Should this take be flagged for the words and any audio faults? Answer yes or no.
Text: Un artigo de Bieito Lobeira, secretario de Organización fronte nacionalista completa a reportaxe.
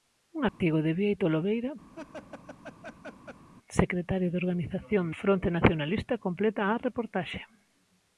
yes